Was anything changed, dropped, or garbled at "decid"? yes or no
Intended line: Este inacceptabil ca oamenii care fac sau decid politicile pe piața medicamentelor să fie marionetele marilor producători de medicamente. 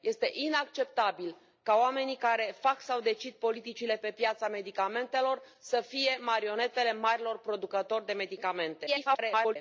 no